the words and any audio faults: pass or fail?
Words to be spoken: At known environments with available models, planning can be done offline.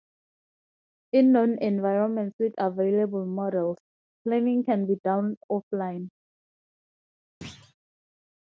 fail